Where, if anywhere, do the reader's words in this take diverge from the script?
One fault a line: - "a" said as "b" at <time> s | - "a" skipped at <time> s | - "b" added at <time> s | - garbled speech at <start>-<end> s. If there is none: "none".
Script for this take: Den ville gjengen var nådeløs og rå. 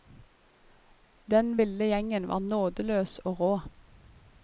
none